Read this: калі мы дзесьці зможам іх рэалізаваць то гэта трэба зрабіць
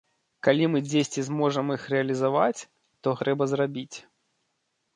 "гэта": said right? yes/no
no